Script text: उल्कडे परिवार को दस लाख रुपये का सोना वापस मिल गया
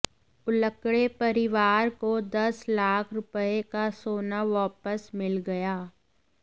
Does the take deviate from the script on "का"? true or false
false